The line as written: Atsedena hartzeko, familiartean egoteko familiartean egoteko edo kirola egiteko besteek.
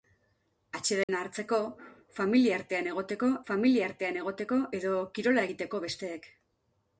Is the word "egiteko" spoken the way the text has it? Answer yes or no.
yes